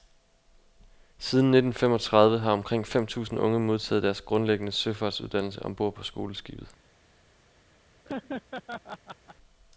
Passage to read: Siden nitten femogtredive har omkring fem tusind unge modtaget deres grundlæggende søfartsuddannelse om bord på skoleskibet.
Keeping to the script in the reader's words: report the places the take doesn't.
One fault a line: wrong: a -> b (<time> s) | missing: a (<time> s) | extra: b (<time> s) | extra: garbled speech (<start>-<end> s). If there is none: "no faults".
no faults